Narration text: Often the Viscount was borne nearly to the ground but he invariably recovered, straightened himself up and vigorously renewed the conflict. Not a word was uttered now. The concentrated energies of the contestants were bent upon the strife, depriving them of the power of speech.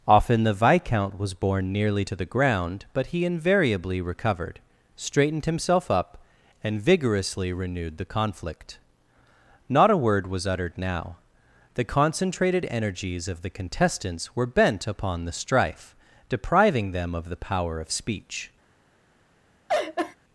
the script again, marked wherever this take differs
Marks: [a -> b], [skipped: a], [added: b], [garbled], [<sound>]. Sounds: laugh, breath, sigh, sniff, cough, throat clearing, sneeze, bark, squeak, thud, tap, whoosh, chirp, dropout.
Often the Viscount was borne nearly to the ground but he invariably recovered, straightened himself up and vigorously renewed the conflict. Not a word was uttered now. The concentrated energies of the contestants were bent upon the strife, depriving them of the power of speech. [laugh]